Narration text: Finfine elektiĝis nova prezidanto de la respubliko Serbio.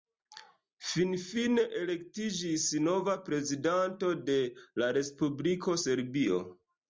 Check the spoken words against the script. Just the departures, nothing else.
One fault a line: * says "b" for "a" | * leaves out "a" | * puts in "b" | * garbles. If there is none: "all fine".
all fine